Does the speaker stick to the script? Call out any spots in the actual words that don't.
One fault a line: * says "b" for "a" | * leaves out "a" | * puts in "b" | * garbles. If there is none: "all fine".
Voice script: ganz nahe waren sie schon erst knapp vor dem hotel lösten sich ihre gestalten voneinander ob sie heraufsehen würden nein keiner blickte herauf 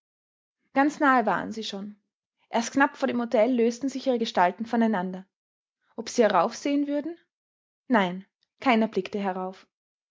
all fine